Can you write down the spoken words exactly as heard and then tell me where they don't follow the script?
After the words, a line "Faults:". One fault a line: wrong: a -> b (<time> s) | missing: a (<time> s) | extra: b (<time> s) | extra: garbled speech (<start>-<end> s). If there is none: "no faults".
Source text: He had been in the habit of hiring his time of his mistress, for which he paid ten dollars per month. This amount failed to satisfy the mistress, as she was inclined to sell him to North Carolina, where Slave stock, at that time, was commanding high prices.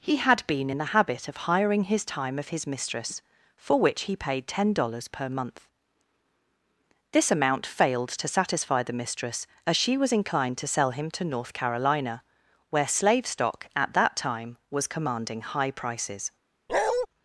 He had been in the habit of hiring his time of his mistress, for which he paid ten dollars per month. This amount failed to satisfy the mistress, as she was inclined to sell him to North Carolina, where Slave stock, at that time, was commanding high prices.
Faults:
no faults